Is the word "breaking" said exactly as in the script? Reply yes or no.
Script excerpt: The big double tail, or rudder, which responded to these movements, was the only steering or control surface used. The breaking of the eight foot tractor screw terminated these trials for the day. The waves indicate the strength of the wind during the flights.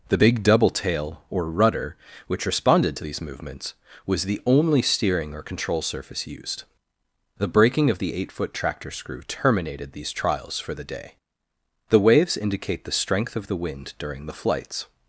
yes